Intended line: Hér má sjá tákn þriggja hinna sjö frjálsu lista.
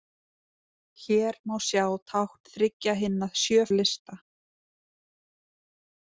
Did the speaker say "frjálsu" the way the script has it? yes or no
no